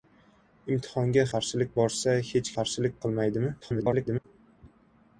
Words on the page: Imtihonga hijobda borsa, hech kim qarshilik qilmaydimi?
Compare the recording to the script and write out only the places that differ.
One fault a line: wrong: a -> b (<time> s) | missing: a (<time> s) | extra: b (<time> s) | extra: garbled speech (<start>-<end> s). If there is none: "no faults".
wrong: hijobda -> qarshilik (1.3 s)
missing: kim (2.5 s)
extra: garbled speech (3.6-4.2 s)